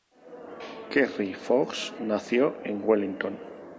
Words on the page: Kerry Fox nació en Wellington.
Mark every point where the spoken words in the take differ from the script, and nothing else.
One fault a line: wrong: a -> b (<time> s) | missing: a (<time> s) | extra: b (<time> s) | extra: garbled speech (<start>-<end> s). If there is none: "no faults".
no faults